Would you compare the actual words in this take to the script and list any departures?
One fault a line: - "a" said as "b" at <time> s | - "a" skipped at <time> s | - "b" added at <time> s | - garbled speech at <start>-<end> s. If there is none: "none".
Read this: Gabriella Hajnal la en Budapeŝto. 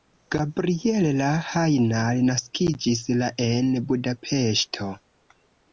- "naskiĝis" added at 2.3 s